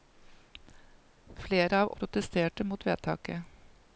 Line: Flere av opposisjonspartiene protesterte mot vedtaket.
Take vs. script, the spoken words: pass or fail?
fail